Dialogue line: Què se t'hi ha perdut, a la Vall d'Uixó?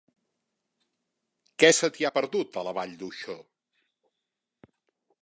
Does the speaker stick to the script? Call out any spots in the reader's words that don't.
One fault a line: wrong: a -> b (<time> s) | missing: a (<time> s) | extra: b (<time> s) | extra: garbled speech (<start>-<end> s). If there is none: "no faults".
no faults